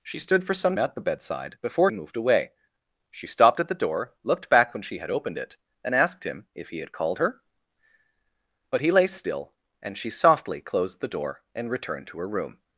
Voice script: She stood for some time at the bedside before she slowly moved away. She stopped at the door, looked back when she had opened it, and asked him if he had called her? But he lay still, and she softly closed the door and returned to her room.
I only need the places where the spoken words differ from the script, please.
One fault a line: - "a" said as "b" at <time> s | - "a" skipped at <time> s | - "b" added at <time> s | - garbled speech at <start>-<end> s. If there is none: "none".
- "time" skipped at 0.8 s
- "she slowly" skipped at 1.9 s